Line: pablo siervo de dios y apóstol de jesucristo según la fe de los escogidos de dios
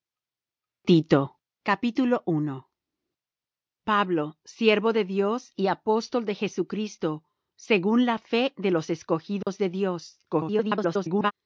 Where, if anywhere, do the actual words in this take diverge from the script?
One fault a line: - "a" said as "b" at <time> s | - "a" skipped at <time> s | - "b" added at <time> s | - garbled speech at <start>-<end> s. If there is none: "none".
- garbled speech at 10.3-11.3 s